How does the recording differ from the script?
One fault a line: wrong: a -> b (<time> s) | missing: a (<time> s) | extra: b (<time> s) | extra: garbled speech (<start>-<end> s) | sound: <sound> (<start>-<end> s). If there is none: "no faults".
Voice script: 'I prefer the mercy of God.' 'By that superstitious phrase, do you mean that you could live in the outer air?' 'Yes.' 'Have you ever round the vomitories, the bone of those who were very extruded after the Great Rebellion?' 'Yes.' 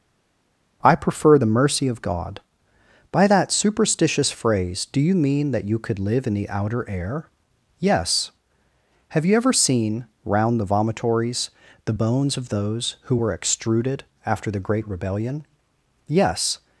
extra: seen (9.5 s)
wrong: bone -> bones (11.9 s)
missing: very (13.3 s)